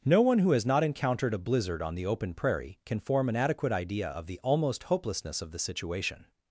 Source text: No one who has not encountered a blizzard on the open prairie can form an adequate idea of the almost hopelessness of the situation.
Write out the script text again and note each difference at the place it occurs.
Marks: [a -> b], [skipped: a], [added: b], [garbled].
No one who has not encountered a blizzard on the open prairie can form an adequate idea of the almost hopelessness of the situation.